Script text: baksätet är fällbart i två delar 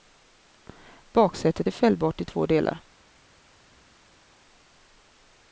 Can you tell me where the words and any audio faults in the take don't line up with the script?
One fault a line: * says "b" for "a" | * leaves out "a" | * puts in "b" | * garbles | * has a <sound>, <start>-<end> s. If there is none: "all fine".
all fine